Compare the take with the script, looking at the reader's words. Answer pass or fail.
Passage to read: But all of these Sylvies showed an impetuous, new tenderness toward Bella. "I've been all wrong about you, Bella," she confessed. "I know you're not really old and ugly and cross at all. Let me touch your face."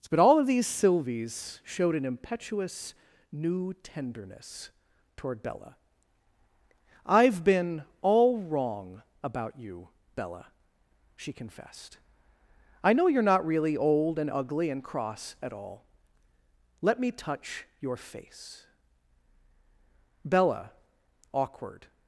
fail